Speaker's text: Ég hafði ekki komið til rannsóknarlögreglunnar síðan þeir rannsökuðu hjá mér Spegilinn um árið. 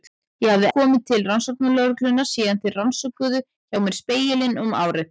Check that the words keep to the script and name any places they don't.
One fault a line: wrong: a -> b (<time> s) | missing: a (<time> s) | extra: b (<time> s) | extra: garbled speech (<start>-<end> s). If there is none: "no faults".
missing: ekki (0.7 s)